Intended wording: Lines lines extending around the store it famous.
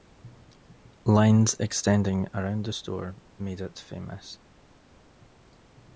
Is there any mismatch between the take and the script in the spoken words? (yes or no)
yes